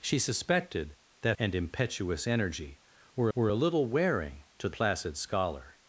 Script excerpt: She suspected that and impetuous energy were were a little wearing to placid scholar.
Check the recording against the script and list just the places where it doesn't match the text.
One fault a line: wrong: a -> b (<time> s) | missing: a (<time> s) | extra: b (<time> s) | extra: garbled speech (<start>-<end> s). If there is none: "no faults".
no faults